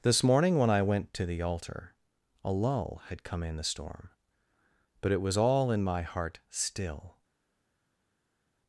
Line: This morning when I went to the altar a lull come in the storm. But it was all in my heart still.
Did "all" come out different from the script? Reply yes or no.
no